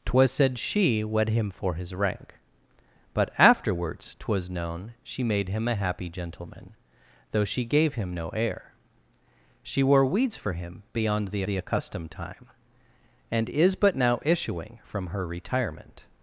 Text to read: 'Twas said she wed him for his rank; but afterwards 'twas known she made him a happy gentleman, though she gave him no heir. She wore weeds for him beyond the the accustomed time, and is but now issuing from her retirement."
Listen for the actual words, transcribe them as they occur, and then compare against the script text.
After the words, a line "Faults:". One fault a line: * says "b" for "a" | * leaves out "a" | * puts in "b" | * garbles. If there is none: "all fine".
'Twas said she wed him for his rank; but afterwards 'twas known she made him a happy gentleman, though she gave him no heir. She wore weeds for him beyond the the accustomed time, and is but now issuing from her retirement."
Faults:
all fine